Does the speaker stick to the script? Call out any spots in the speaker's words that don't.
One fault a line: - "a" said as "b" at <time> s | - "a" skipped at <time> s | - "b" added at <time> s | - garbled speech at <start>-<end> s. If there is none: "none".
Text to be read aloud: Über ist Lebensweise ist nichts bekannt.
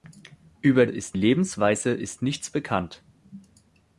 none